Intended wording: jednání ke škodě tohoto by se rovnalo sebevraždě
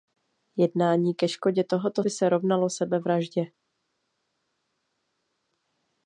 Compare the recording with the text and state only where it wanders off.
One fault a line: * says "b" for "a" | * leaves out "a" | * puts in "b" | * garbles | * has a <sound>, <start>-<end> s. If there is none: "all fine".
all fine